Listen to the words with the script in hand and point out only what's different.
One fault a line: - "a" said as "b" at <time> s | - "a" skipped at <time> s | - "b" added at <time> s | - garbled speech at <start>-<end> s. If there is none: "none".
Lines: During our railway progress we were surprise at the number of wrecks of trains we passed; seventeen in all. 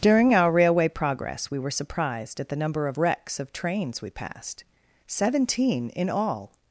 - "surprise" said as "surprised" at 1.7 s